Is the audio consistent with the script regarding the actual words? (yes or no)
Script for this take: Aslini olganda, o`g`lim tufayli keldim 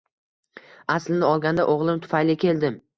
yes